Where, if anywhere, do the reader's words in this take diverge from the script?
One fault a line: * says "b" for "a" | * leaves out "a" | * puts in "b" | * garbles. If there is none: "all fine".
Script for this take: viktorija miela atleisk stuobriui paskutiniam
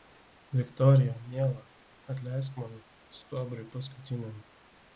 * puts in "man"